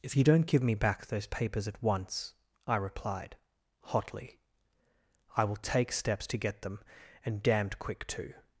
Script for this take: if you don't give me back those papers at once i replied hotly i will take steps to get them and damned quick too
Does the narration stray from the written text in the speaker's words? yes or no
no